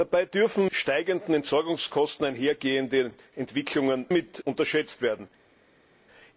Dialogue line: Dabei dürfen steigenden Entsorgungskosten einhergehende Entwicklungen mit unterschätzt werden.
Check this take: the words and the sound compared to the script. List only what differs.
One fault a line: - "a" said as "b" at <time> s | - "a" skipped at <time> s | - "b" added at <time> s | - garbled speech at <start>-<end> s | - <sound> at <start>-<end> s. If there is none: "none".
none